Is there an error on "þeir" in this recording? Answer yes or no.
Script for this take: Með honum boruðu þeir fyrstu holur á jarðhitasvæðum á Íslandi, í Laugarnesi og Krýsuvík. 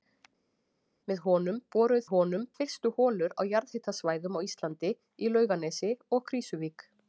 yes